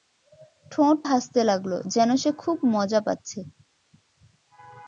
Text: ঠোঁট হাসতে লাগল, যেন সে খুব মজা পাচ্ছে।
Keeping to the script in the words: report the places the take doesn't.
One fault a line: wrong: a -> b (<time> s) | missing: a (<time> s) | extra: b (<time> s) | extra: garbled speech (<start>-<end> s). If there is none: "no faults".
no faults